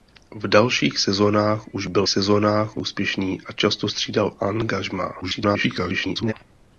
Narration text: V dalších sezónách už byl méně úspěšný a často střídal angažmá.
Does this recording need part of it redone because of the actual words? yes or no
yes